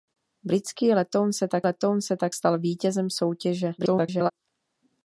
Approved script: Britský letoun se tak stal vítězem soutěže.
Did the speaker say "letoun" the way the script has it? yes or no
yes